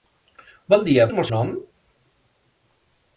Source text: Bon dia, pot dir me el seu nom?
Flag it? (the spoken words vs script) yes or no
yes